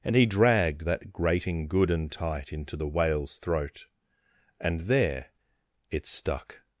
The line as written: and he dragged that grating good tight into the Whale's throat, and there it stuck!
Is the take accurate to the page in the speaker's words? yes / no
no